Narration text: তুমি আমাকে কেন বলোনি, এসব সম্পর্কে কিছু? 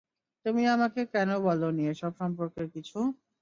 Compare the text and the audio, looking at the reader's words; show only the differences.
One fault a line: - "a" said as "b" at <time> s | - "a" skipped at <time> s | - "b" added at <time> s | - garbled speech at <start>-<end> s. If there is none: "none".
none